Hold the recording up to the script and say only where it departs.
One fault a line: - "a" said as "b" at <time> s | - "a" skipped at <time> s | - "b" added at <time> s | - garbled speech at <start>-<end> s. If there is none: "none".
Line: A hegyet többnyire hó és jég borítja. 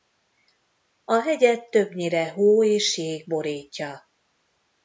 none